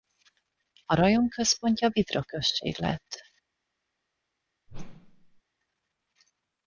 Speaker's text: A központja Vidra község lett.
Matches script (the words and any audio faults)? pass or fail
fail